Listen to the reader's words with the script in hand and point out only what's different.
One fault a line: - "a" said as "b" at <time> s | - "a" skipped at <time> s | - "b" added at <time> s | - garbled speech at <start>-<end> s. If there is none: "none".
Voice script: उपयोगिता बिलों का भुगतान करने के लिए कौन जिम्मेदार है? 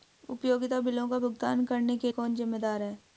- "लिए" skipped at 2.1 s